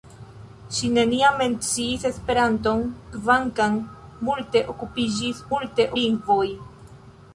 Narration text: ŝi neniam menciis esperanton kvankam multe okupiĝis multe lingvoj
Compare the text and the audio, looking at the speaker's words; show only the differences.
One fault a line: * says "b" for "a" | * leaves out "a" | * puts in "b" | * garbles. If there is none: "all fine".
all fine